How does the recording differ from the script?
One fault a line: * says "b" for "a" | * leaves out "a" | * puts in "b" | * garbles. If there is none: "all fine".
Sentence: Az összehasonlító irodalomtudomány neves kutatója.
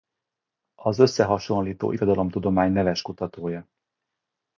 all fine